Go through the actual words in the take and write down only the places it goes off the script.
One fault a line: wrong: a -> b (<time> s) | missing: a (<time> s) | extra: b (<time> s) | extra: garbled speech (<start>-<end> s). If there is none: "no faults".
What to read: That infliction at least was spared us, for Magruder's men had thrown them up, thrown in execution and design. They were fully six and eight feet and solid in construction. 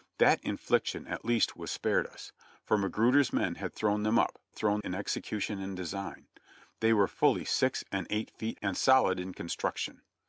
no faults